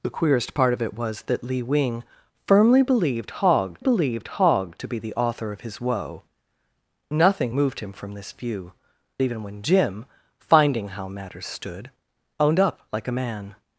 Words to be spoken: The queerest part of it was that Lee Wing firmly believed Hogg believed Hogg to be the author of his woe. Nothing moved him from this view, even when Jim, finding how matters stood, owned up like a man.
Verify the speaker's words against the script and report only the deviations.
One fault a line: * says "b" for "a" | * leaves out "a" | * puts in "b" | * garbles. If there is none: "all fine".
all fine